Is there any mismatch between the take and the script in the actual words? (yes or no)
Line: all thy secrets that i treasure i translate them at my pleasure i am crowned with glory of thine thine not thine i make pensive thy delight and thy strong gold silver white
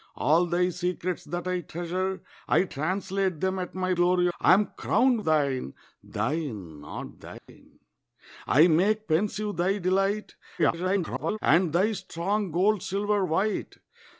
yes